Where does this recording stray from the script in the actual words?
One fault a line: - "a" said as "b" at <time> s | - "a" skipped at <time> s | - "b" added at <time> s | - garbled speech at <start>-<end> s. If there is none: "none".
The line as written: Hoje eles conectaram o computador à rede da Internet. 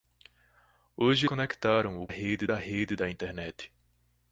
- "eles" skipped at 1.3 s
- "computador" said as "rede" at 2.1 s